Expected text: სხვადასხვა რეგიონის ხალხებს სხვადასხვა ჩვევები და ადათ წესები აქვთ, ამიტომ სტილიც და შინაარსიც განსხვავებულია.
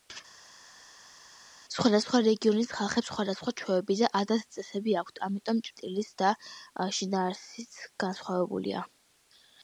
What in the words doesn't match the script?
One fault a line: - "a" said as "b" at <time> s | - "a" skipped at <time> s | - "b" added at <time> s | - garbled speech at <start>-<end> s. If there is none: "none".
none